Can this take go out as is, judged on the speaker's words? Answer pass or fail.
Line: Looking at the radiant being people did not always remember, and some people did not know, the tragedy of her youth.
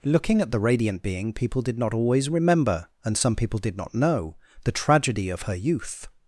pass